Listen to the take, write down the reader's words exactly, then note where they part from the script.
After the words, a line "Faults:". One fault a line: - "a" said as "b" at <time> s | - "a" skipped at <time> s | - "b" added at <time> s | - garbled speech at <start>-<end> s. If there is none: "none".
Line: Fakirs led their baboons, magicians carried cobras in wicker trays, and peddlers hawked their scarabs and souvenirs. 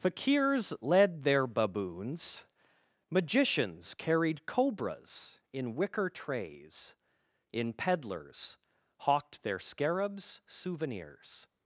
Fakirs led their baboons, magicians carried cobras in wicker trays, in peddlers hawked their scarabs souvenirs.
Faults:
- "and" said as "in" at 7.5 s
- "and" skipped at 10.4 s